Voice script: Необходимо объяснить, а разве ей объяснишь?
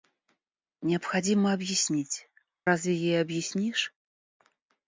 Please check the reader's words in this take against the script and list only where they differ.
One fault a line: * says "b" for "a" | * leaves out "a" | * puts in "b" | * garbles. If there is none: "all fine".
* leaves out "а"